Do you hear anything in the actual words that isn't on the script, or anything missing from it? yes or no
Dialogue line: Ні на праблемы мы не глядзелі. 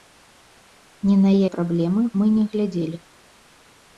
no